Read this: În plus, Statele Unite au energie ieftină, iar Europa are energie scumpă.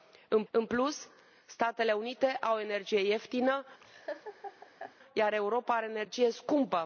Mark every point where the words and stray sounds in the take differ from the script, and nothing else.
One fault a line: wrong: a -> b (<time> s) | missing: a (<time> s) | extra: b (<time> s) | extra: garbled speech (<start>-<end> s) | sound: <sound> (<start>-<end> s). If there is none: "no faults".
extra: în (0.5 s)
sound: laugh (3.8-5.0 s)